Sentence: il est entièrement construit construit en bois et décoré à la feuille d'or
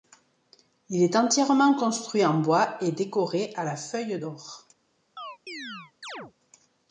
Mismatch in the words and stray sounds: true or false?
true